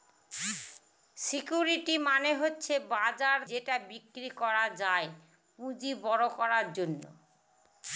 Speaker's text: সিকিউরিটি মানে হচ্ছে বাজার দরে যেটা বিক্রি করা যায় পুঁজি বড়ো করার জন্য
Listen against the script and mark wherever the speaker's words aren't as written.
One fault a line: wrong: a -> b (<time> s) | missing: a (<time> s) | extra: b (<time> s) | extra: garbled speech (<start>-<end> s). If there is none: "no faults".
missing: দরে (3.4 s)